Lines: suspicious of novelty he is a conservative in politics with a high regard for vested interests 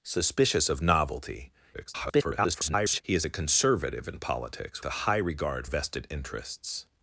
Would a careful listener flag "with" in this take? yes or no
yes